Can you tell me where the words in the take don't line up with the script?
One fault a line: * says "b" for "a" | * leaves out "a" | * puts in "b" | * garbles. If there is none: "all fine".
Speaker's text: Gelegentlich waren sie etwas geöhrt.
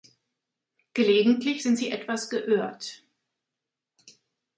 * says "sind" for "waren"